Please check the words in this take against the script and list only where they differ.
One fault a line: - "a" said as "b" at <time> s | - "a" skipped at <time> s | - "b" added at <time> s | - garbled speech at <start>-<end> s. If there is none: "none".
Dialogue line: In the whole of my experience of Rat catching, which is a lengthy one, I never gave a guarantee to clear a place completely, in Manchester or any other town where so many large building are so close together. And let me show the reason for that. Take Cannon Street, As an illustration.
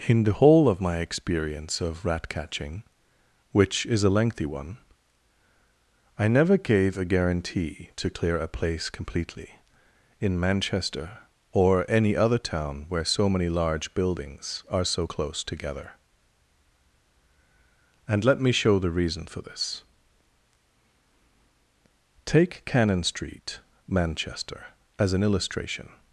- "building" said as "buildings" at 13.9 s
- "that" said as "this" at 19.4 s
- "Manchester" added at 23.8 s